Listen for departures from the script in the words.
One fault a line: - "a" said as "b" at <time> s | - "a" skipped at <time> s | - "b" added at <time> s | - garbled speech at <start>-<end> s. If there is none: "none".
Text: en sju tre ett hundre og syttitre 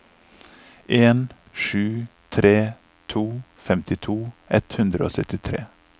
- "to femtito" added at 3.1 s